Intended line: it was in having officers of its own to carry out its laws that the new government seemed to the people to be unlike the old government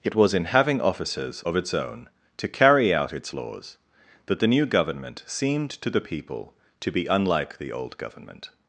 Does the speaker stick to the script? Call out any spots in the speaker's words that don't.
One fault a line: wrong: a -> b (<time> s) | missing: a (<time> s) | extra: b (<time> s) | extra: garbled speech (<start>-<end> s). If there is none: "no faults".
no faults